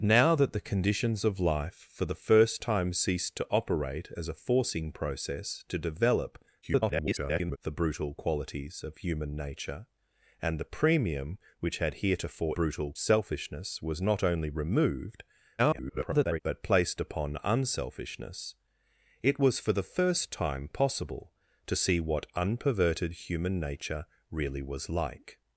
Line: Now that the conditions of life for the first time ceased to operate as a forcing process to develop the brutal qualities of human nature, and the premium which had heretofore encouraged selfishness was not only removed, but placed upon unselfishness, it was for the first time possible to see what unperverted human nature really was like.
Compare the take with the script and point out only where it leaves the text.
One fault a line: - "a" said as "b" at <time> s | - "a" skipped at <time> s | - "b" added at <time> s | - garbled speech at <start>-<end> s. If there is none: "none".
- garbled speech at 6.6-7.6 s
- "encouraged" said as "brutal" at 12.5 s
- garbled speech at 15.6-16.4 s